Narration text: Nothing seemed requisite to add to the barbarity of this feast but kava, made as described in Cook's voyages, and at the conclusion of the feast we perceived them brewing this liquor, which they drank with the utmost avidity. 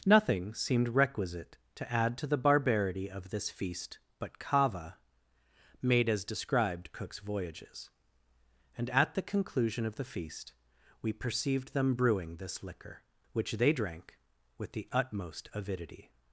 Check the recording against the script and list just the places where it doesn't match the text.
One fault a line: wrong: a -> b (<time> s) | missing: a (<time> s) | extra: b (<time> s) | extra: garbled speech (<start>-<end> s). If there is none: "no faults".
missing: in (6.9 s)